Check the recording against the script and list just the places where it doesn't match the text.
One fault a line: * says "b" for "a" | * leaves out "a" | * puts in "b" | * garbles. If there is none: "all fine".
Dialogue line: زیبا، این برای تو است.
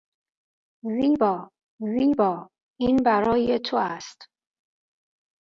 * puts in "زیبا"